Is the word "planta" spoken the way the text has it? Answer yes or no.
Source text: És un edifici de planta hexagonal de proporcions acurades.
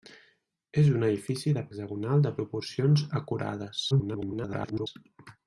no